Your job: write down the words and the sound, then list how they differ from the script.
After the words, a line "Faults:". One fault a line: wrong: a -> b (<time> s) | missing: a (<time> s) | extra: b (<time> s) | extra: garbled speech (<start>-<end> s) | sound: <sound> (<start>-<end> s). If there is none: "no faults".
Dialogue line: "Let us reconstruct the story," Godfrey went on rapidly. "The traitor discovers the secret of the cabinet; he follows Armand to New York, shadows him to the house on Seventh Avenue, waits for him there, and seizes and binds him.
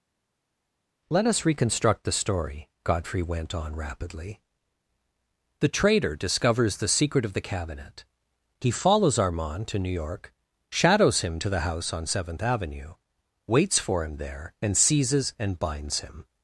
"Let us reconstruct the story," Godfrey went on rapidly. "The traitor discovers the secret of the cabinet; he follows Armand to New York, shadows him to the house on Seventh Avenue, waits for him there, and seizes and binds him.
Faults:
no faults